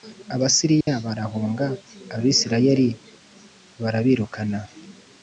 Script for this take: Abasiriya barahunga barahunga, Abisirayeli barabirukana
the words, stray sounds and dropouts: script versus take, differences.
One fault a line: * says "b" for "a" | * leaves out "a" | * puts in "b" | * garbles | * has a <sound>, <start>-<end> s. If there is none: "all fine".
* has a dropout, 0.8-0.9 s
* leaves out "barahunga"